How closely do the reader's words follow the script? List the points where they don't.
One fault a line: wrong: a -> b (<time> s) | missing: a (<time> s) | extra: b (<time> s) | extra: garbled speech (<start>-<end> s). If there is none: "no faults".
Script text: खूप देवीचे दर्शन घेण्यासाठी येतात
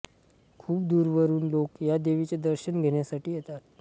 extra: दूरवरून लोक या (0.8 s)